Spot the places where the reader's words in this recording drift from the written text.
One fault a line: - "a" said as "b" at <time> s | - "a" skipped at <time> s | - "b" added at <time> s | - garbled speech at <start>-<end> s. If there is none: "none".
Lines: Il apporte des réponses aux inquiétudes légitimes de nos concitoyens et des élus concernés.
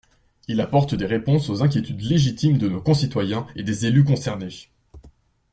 none